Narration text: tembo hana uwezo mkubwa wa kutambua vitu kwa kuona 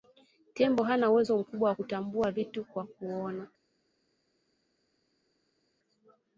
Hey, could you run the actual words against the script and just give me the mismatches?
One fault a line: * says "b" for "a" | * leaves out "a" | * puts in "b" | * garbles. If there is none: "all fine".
all fine